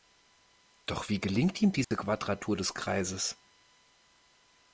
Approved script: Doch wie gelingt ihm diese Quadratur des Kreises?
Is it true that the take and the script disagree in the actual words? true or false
false